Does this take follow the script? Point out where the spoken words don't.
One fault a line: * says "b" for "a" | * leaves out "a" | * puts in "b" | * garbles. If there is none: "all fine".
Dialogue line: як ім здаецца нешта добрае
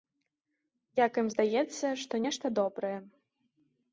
* puts in "што"